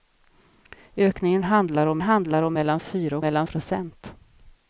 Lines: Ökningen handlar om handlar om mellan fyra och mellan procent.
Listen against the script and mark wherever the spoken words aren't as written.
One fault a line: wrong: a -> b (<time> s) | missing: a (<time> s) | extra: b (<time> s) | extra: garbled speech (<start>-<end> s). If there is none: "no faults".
no faults